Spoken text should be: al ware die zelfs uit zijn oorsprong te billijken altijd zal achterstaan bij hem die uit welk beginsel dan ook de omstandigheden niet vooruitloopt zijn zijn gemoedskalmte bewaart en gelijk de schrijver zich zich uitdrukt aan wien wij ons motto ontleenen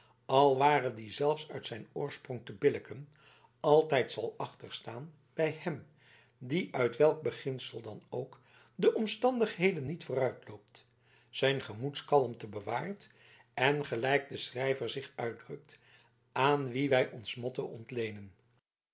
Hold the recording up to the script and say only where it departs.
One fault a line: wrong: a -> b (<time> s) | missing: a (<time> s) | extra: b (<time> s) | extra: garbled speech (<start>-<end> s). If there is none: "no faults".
missing: zijn (11.6 s)
missing: zich (15.1 s)